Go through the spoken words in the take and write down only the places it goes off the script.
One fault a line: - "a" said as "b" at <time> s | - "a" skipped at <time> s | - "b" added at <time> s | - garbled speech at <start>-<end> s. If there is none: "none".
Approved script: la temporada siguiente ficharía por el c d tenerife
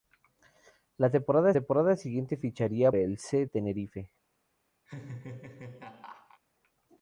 - "temporada" added at 1.5 s
- "por" skipped at 2.9 s
- "d" skipped at 3.4 s